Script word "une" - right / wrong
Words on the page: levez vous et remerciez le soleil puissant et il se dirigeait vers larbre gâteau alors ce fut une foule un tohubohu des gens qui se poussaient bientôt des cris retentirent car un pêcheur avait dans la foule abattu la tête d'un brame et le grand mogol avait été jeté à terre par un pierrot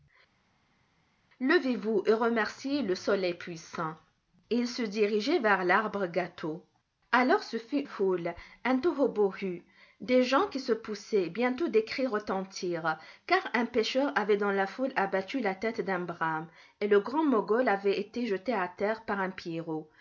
wrong